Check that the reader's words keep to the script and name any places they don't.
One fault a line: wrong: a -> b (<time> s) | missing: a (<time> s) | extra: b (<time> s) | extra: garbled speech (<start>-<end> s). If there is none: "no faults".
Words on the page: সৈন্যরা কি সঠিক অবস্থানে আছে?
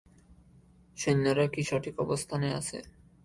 no faults